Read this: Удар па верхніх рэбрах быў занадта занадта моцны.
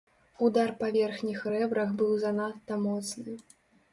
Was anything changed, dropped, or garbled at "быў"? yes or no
no